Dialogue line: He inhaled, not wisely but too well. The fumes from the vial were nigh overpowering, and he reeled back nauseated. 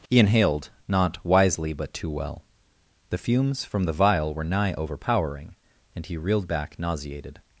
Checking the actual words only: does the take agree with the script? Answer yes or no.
yes